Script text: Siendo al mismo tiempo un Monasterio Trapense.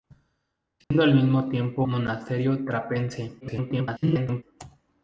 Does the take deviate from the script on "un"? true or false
true